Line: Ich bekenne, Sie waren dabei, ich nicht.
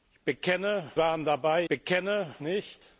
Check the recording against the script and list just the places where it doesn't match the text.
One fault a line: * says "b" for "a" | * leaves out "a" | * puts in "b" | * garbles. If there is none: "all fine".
* leaves out "Sie"
* says "bekenne" for "ich"